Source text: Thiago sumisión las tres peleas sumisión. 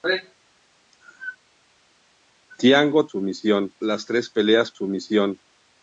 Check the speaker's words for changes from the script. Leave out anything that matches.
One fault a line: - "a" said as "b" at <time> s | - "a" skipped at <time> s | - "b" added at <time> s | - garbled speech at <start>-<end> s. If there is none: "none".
none